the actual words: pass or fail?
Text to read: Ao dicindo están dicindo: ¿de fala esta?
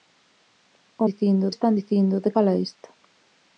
pass